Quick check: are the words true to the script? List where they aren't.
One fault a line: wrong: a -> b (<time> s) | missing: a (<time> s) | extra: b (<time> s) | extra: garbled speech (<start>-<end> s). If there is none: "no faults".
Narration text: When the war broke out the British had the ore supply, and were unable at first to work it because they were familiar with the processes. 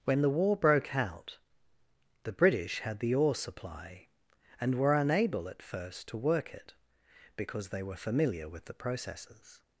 no faults